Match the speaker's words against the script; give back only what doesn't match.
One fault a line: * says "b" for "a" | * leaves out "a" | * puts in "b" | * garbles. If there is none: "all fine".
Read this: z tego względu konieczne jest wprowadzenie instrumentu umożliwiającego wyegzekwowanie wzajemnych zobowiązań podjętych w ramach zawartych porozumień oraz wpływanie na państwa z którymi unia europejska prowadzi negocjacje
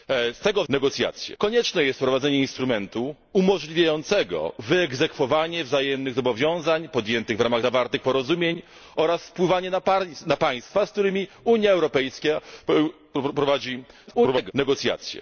* says "negocjacje" for "względu"
* garbles